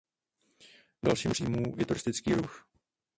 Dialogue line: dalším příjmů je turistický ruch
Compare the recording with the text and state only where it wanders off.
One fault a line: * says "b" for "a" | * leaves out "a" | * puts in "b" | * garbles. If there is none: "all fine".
all fine